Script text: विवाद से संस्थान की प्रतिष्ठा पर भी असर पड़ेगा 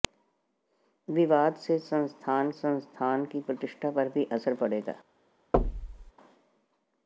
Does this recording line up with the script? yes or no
no